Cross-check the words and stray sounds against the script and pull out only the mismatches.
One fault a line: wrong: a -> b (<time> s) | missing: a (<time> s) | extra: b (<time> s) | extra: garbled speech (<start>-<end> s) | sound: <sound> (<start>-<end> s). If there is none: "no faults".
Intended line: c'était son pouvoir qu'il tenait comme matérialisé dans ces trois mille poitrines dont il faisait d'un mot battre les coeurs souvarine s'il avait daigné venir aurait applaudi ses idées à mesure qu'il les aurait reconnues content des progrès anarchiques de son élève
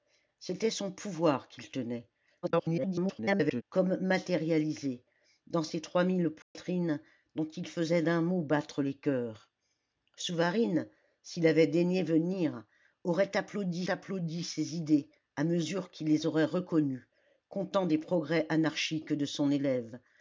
extra: garbled speech (2.4-3.6 s)
sound: dropout (6.4-6.6 s)
extra: applaudi (13.9 s)